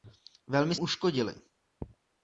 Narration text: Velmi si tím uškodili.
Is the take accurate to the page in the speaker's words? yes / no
no